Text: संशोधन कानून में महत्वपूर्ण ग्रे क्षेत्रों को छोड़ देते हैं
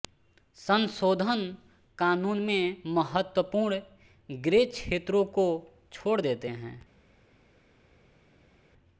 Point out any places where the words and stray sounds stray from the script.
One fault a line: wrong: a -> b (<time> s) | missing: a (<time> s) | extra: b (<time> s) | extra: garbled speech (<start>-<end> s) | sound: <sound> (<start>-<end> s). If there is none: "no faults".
no faults